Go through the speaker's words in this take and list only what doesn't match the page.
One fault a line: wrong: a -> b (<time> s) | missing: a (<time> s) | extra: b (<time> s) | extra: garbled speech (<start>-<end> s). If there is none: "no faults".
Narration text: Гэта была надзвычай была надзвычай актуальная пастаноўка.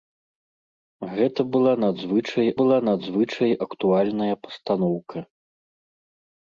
no faults